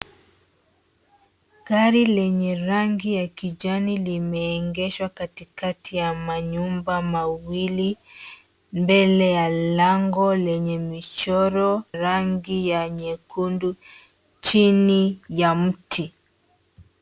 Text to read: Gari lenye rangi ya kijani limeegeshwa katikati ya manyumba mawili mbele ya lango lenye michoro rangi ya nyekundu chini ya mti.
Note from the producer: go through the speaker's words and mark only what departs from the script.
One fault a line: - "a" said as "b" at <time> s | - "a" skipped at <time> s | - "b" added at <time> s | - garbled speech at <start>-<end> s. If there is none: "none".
none